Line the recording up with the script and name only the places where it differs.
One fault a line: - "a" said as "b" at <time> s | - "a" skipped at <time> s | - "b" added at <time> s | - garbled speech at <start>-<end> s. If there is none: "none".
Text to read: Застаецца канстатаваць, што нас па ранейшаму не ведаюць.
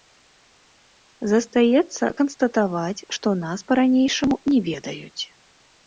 none